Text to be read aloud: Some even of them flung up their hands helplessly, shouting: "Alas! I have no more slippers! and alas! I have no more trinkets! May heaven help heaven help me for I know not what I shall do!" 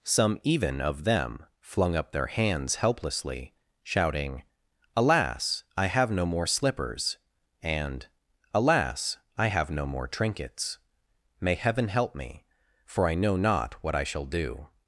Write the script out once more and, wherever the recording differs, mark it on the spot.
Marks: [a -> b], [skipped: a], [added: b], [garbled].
Some even of them flung up their hands helplessly, shouting: "Alas! I have no more slippers! and alas! I have no more trinkets! May heaven help [skipped: heaven help] me for I know not what I shall do!"